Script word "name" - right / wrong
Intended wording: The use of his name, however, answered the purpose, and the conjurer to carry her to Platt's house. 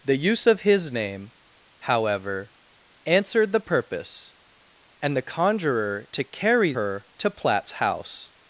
right